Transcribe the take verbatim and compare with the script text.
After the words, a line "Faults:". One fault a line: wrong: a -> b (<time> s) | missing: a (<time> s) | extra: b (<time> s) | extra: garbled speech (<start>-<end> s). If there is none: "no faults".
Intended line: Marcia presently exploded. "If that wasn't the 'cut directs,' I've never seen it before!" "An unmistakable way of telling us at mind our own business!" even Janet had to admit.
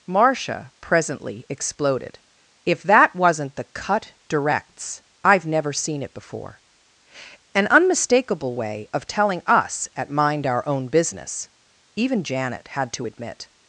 Marcia presently exploded. "If that wasn't the 'cut directs,' I've never seen it before!" "An unmistakable way of telling us at mind our own business!" even Janet had to admit.
Faults:
no faults